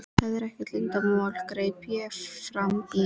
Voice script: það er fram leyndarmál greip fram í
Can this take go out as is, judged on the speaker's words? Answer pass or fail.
fail